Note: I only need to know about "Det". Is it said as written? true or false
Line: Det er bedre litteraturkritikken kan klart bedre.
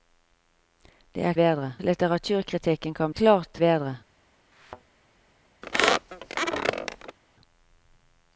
true